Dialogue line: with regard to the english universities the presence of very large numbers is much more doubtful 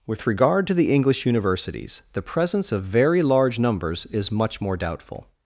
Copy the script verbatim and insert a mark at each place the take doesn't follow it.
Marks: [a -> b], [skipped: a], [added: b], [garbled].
with regard to the english universities the presence of very large numbers is much more doubtful